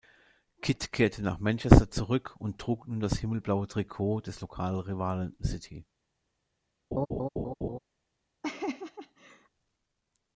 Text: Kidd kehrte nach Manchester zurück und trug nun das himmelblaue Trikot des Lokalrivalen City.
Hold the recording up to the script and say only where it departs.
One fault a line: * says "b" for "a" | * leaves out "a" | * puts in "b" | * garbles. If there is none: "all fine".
all fine